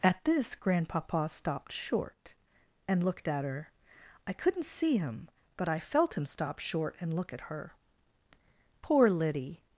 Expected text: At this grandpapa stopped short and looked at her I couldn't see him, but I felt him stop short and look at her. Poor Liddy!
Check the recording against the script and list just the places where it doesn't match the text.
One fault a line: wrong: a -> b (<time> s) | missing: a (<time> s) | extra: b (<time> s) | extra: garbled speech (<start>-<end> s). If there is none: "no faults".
no faults